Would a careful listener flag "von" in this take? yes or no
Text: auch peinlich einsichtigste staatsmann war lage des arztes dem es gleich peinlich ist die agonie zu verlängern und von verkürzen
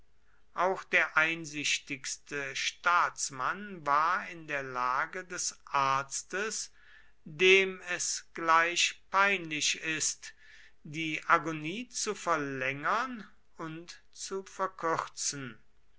yes